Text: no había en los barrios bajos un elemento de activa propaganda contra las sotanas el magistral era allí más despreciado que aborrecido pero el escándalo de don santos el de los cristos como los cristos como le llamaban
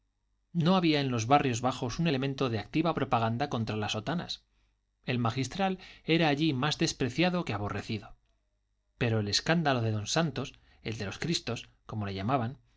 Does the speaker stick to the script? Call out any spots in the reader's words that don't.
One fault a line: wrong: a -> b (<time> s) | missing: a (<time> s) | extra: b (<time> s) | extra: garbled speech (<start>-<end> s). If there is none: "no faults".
missing: los cristos como (12.0 s)